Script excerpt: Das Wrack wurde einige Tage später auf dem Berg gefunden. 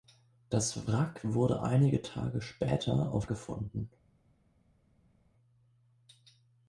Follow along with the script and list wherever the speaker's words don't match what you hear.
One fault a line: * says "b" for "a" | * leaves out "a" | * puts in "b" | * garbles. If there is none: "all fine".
* leaves out "dem Berg"